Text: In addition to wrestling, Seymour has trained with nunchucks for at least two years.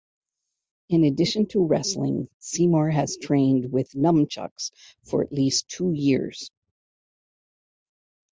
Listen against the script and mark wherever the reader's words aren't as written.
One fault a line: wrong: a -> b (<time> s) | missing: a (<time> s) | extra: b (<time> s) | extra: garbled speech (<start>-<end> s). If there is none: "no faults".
no faults